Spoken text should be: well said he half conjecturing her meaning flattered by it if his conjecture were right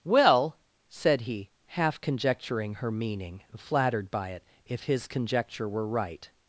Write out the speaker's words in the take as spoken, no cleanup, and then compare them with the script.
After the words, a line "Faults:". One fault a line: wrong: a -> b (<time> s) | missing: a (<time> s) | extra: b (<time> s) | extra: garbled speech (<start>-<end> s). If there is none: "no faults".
well said he half conjecturing her meaning flattered by it if his conjecture were right
Faults:
no faults